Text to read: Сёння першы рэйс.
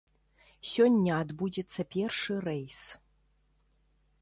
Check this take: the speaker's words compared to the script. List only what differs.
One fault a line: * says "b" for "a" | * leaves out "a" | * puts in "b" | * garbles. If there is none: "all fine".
* puts in "адбудзецца"